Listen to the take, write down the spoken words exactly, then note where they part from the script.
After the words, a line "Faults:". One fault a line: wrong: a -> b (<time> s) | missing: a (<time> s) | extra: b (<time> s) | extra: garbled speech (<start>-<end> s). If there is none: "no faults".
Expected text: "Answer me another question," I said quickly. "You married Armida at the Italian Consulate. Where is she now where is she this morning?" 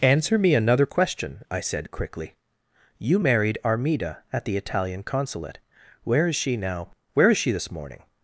"Answer me another question," I said quickly. "You married Armida at the Italian Consulate. Where is she now where is she this morning?"
Faults:
no faults